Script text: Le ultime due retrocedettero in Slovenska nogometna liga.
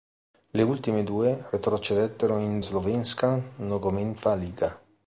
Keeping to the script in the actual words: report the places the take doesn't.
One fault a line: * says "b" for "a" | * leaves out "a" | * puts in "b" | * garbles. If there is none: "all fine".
all fine